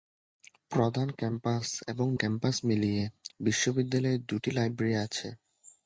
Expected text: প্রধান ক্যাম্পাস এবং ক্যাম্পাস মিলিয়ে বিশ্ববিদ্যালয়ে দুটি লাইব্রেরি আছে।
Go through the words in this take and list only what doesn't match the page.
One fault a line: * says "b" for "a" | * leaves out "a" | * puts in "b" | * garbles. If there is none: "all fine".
all fine